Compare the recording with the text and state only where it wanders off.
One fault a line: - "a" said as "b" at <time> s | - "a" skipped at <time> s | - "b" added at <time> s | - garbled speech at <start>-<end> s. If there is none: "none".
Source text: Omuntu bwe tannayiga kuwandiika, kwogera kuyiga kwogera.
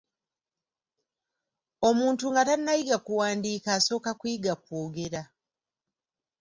- "bwe" said as "nga" at 2.3 s
- "kwogera" said as "asooka" at 3.8 s